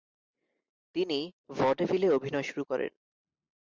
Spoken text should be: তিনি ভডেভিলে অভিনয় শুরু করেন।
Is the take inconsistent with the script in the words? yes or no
no